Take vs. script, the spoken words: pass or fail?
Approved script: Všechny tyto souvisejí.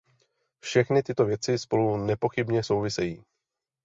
fail